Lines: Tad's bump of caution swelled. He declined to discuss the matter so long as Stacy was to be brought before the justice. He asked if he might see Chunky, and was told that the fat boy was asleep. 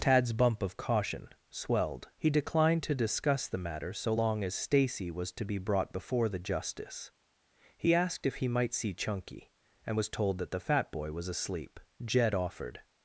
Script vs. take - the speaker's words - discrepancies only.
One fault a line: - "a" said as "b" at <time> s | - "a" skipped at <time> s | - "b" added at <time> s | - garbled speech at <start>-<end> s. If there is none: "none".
- "Jed offered" added at 12.0 s